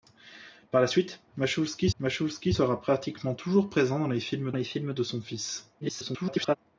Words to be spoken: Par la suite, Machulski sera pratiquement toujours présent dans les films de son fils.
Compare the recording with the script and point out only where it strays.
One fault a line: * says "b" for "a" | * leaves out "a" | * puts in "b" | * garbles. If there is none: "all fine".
* puts in "Machulski"
* puts in "les films"
* garbles